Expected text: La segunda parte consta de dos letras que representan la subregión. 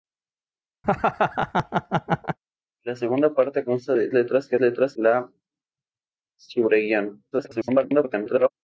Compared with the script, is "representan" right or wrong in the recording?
wrong